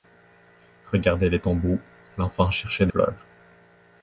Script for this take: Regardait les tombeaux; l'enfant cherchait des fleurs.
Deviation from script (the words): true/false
true